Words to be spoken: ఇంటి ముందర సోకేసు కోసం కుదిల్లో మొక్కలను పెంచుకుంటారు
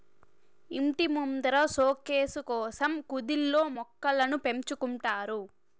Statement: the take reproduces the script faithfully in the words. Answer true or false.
true